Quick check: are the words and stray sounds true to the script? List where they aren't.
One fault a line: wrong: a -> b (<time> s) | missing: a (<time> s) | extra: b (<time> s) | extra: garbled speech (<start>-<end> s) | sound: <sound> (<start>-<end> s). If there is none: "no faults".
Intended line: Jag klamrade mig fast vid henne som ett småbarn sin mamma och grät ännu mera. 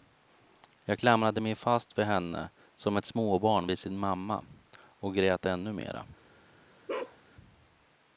extra: vid (3.7 s)
sound: bark (6.9-7.2 s)